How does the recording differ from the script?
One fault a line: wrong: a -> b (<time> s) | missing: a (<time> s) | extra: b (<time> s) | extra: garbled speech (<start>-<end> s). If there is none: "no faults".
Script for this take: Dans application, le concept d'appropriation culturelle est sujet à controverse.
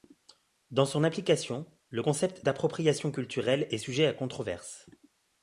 extra: son (0.9 s)